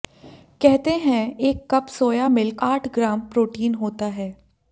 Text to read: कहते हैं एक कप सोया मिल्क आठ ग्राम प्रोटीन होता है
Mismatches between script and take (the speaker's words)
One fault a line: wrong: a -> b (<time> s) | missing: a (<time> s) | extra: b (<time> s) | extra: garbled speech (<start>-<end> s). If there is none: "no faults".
no faults